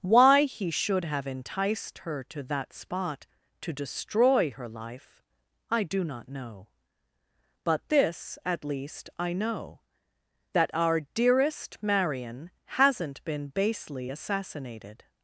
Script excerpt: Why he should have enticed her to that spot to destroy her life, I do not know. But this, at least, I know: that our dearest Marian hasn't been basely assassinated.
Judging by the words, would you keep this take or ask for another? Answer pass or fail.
pass